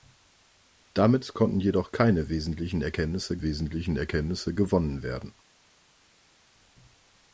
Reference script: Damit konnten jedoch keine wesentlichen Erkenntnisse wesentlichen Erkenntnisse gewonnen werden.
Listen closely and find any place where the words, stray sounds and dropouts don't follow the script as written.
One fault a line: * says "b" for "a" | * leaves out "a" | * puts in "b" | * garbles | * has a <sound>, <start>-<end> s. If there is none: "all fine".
all fine